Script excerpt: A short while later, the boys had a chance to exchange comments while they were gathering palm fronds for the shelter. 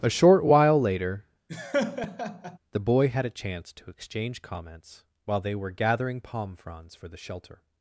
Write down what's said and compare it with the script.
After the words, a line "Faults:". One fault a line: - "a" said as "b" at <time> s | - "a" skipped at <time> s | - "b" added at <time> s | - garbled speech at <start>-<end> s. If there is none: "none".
A short while later, the boy had a chance to exchange comments while they were gathering palm fronds for the shelter.
Faults:
- "boys" said as "boy" at 2.8 s